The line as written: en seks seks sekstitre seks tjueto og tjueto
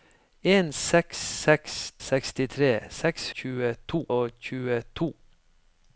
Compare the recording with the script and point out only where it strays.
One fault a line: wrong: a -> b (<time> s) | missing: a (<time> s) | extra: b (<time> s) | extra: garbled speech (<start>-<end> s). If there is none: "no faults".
no faults